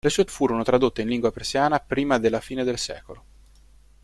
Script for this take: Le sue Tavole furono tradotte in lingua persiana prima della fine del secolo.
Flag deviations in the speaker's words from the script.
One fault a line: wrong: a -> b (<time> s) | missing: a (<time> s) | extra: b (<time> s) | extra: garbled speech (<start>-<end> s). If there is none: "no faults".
missing: Tavole (0.3 s)